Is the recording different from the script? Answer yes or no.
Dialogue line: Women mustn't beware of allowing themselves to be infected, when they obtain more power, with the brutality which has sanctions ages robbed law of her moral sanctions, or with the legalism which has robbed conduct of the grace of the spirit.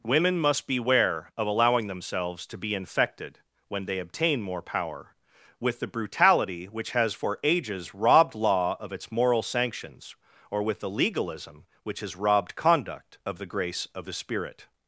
yes